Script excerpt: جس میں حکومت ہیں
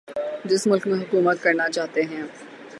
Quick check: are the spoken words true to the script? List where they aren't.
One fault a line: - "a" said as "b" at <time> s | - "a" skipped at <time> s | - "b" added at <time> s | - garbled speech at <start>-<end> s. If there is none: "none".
- "ملک" added at 0.7 s
- "کرنا چاہتے" added at 1.4 s